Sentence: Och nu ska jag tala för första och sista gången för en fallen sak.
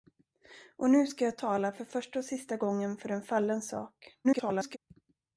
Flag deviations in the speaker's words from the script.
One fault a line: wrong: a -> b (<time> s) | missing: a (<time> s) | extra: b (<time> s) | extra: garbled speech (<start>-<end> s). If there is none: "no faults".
extra: garbled speech (4.2-4.8 s)